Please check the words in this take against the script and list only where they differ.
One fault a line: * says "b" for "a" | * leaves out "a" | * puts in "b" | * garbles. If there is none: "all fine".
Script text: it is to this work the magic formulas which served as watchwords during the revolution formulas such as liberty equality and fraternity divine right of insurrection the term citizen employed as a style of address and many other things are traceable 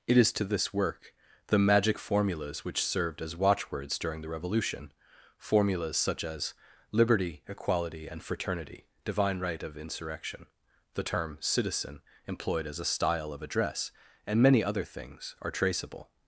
all fine